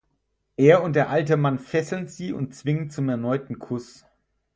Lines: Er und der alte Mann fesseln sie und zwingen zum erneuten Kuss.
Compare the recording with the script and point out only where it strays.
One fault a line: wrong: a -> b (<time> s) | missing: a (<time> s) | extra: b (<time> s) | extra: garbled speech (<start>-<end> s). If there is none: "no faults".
no faults